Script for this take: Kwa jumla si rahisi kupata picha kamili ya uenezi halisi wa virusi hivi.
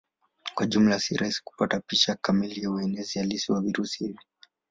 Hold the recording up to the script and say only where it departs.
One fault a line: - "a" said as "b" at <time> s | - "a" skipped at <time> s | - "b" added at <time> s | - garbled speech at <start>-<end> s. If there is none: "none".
none